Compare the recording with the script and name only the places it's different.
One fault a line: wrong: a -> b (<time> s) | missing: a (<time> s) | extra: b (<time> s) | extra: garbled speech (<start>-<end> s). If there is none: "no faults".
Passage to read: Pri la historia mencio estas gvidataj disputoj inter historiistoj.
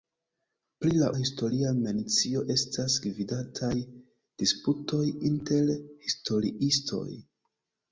no faults